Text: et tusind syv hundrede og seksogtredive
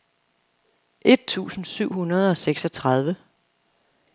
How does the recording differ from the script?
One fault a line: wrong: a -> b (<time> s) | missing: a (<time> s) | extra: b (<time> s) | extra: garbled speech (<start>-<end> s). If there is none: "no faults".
no faults